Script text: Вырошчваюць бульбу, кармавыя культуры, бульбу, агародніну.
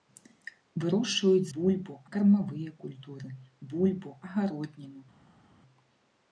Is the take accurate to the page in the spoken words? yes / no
yes